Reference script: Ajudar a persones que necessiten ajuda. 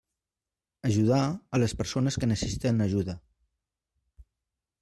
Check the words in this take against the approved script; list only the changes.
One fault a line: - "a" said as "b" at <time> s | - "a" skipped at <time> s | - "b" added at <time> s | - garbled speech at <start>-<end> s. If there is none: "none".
- "les" added at 1.6 s